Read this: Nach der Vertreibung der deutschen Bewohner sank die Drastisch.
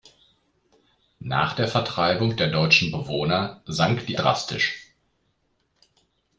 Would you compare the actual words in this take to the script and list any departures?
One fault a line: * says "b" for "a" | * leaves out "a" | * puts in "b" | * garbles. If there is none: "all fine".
all fine